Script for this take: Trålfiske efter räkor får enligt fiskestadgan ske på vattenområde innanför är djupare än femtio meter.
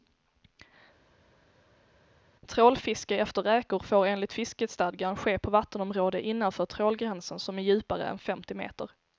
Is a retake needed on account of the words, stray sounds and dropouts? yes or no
yes